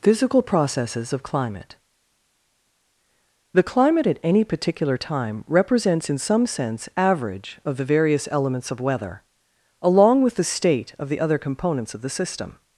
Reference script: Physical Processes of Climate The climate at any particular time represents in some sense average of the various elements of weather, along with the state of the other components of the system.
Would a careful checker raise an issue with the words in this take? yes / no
no